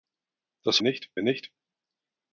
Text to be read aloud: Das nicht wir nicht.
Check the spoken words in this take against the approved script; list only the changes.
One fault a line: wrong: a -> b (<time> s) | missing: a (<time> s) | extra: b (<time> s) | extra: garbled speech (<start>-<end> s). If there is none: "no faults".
no faults